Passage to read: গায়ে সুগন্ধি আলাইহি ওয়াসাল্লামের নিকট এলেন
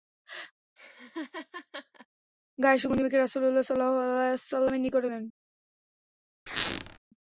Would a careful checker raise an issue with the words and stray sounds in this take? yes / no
yes